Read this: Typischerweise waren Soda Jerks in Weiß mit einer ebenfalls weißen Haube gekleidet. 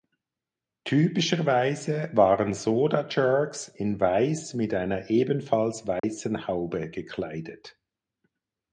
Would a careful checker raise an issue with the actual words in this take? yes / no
no